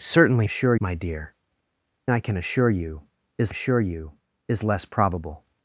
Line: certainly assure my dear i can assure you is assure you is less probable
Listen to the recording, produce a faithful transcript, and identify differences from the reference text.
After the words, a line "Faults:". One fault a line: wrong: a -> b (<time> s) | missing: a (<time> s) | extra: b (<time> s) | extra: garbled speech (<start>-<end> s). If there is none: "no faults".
certainly assure my dear i can assure you is assure you is less probable
Faults:
no faults